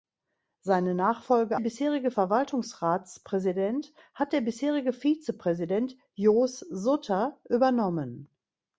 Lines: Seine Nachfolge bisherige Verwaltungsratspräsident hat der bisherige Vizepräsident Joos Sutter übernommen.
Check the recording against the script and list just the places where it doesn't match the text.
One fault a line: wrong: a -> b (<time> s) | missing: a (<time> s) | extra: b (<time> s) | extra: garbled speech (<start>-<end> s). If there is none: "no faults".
no faults